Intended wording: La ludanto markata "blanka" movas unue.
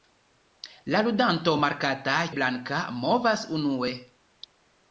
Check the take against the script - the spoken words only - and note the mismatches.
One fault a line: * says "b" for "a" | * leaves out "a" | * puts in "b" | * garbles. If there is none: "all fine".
all fine